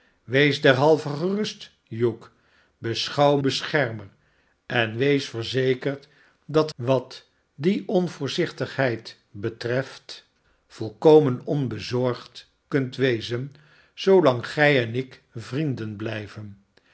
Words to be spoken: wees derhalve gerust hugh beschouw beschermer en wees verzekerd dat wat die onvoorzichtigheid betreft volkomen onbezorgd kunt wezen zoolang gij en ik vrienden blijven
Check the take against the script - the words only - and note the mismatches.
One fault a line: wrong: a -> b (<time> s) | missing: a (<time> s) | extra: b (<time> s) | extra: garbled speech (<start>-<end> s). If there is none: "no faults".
no faults